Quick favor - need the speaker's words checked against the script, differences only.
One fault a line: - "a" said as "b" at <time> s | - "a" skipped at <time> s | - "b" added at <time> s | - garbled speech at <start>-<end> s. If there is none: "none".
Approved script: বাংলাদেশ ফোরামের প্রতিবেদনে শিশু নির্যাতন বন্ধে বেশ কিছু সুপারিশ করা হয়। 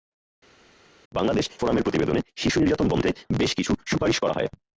none